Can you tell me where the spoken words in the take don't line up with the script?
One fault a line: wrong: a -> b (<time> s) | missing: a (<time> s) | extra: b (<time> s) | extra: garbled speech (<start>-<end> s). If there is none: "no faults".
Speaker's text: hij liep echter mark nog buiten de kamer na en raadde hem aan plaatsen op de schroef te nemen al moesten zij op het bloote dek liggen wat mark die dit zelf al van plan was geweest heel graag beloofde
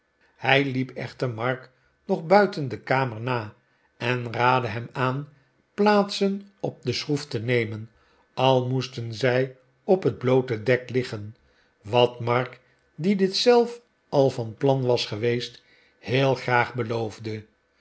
no faults